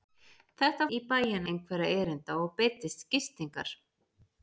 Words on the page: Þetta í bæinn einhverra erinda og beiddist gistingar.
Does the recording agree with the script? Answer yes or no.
yes